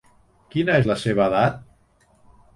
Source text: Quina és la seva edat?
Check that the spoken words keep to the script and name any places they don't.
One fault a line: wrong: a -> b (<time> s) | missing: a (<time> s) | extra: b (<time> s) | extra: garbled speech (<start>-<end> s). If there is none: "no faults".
no faults